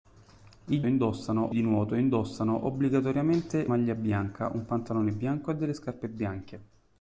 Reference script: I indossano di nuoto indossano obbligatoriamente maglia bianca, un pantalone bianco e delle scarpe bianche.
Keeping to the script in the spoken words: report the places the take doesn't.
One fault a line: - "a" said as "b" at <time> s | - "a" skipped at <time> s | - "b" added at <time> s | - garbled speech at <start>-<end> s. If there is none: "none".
none